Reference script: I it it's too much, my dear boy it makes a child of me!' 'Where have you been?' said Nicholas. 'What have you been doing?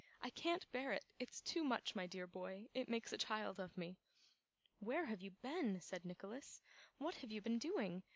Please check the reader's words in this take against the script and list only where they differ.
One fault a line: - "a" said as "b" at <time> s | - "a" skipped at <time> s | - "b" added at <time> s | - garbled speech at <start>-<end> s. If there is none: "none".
- "can't bear" added at 0.3 s